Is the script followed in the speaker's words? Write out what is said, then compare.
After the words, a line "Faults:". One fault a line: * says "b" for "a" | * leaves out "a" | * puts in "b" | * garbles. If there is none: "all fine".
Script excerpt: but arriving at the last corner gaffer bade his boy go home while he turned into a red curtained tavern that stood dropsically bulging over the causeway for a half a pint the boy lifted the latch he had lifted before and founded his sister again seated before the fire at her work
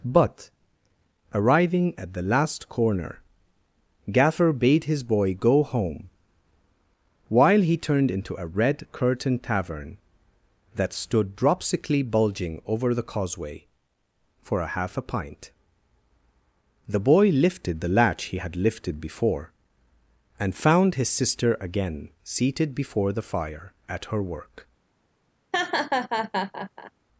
but arriving at the last corner gaffer bade his boy go home while he turned into a red curtained tavern that stood dropsically bulging over the causeway for a half a pint the boy lifted the latch he had lifted before and found his sister again seated before the fire at her work
Faults:
* says "found" for "founded"